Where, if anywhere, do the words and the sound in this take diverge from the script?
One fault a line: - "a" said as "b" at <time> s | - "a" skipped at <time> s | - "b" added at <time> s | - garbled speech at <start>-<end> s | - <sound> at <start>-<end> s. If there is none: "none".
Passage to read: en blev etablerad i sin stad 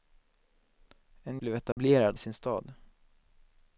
- dropout at 1.7-1.8 s